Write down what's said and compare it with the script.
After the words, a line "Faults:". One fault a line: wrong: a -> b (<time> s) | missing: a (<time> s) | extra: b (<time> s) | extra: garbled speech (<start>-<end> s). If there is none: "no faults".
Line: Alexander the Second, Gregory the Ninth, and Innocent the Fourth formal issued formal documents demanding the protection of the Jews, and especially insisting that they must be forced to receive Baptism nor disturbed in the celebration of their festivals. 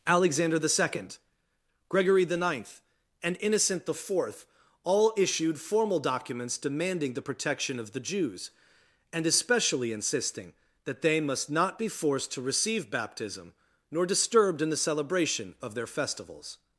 Alexander the Second, Gregory the Ninth, and Innocent the Fourth all issued formal documents demanding the protection of the Jews, and especially insisting that they must not be forced to receive Baptism nor disturbed in the celebration of their festivals.
Faults:
wrong: formal -> all (4.8 s)
extra: not (11.5 s)